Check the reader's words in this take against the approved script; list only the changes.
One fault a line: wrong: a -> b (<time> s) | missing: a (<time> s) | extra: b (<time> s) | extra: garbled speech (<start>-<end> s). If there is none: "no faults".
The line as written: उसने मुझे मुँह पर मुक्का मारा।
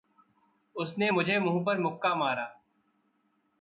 no faults